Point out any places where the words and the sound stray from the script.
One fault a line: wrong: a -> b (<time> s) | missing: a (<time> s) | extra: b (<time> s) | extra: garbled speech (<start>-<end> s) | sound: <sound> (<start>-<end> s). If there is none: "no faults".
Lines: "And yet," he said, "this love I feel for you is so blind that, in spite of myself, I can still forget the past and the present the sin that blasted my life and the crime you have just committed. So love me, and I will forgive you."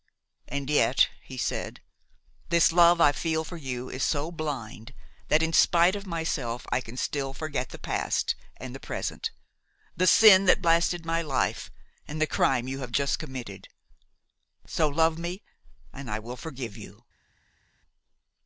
no faults